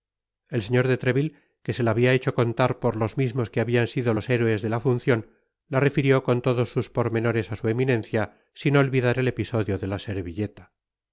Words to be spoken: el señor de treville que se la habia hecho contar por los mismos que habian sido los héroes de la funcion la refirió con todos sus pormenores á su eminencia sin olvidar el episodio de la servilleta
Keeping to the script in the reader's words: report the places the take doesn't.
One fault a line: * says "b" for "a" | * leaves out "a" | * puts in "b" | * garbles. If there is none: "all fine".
all fine